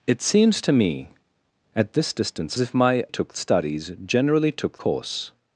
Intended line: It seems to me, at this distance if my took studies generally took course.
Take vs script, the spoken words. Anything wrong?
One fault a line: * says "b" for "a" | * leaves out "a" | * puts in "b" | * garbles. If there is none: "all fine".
all fine